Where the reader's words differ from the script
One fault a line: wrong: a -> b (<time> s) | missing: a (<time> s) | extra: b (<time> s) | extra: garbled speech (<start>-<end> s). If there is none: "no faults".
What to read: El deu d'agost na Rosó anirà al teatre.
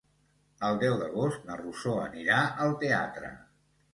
no faults